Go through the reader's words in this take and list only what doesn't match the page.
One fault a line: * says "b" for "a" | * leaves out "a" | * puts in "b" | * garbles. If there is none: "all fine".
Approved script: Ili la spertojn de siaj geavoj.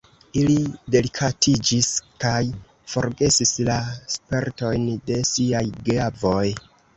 * puts in "delikatiĝis kaj forgesis"